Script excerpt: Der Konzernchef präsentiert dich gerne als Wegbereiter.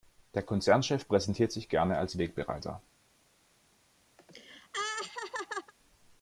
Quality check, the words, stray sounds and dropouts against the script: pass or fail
fail